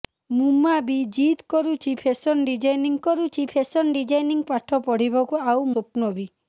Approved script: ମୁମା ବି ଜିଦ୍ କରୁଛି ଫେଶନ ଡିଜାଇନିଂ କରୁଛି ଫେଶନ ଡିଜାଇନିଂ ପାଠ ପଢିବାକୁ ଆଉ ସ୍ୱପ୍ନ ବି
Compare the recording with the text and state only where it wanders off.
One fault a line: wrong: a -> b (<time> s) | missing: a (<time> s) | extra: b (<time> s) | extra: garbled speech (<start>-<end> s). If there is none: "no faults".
no faults